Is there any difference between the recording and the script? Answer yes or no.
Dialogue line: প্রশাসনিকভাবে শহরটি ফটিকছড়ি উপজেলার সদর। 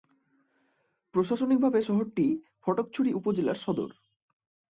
no